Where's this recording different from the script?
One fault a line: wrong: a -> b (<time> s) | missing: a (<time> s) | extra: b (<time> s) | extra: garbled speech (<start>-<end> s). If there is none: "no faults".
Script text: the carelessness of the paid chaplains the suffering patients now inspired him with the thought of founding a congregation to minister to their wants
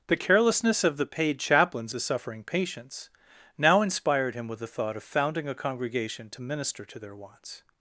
no faults